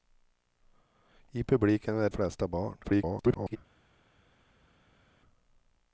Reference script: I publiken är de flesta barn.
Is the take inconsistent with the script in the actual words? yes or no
yes